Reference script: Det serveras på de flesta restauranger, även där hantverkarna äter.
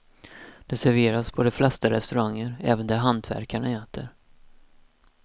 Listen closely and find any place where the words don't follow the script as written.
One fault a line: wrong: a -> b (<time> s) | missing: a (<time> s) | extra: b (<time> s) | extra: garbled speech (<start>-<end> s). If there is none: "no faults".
no faults